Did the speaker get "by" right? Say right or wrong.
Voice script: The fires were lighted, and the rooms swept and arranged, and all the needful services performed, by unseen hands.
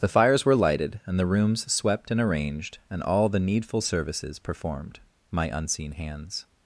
wrong